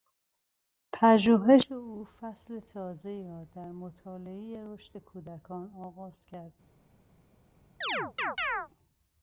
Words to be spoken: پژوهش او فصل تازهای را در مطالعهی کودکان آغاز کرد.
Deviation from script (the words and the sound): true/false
true